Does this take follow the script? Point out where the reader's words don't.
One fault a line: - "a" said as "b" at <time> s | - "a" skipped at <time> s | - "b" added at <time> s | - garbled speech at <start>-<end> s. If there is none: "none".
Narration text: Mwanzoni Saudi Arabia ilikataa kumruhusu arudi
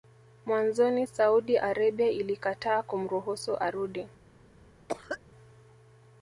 none